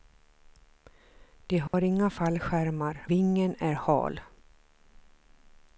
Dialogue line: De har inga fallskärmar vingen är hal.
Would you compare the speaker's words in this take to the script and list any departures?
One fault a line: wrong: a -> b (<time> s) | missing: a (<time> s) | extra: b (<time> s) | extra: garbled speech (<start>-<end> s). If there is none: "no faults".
no faults